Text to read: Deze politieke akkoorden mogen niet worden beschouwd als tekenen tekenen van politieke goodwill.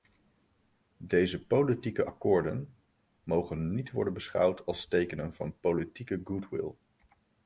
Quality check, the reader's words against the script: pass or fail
fail